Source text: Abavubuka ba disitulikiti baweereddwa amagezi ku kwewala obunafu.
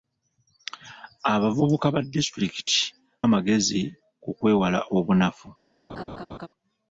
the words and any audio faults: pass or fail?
fail